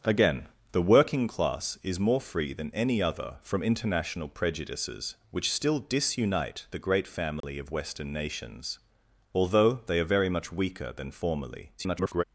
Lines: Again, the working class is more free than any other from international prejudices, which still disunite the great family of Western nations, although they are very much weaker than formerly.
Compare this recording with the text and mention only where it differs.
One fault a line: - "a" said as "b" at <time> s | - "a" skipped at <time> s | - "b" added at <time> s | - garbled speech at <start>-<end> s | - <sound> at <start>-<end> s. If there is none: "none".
- dropout at 7.4-7.4 s
- garbled speech at 11.8-12.2 s